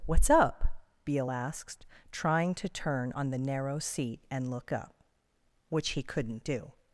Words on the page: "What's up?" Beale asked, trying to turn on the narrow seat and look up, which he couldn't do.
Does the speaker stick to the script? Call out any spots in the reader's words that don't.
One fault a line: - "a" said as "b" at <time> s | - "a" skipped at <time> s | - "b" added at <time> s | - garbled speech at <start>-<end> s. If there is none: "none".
none